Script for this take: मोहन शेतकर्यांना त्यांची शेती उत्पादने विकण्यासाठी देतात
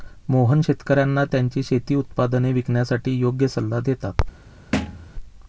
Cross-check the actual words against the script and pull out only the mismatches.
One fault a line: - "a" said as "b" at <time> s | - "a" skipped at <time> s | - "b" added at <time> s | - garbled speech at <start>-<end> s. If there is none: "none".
- "योग्य सल्ला" added at 3.2 s